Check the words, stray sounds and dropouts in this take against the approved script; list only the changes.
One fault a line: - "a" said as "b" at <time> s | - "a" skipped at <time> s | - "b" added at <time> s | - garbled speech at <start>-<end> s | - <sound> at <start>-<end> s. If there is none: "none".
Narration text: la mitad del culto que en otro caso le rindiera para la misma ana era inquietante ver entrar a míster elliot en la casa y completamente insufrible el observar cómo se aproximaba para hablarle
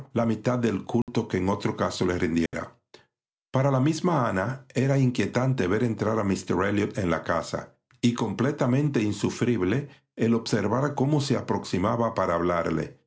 - dropout at 1.0-1.1 s
- dropout at 2.5-2.5 s